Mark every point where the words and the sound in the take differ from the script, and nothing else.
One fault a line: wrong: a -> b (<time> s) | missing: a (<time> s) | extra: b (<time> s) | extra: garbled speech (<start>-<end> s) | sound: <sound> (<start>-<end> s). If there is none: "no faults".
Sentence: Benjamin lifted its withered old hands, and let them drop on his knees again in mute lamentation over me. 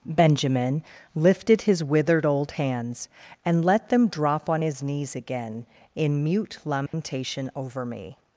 wrong: its -> his (1.6 s)
sound: dropout (6.9-6.9 s)